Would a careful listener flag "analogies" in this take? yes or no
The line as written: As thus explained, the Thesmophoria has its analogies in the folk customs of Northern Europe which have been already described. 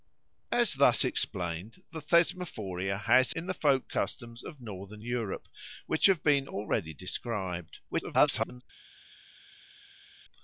yes